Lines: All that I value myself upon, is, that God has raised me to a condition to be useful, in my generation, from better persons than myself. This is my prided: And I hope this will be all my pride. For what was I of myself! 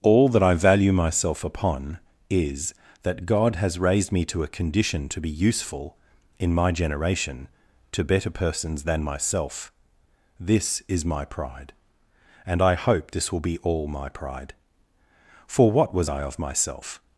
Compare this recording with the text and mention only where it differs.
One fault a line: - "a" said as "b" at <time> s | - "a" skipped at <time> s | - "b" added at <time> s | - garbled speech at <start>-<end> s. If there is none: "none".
- "from" said as "to" at 7.9 s
- "prided" said as "pride" at 11.2 s